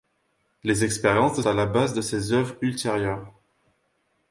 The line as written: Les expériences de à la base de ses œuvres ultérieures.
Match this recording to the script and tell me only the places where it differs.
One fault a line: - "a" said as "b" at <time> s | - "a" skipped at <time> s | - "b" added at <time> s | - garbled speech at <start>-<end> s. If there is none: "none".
none